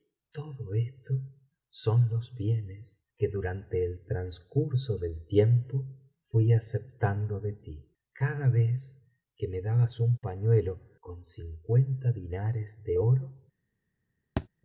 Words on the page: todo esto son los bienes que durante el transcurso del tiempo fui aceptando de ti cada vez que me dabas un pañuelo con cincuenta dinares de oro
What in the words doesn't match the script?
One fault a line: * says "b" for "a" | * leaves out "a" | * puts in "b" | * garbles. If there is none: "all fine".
all fine